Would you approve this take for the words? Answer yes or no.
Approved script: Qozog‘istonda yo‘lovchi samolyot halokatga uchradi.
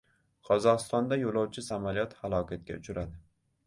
yes